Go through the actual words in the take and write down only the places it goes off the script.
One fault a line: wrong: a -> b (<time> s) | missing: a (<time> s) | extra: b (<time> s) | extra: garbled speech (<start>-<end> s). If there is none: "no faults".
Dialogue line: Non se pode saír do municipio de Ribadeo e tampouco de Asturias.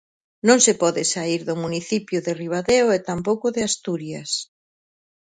no faults